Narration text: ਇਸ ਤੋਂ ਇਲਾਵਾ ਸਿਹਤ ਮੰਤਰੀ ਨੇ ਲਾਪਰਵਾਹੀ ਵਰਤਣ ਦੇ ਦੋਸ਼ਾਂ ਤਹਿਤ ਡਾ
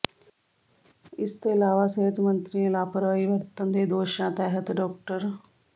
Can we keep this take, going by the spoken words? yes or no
yes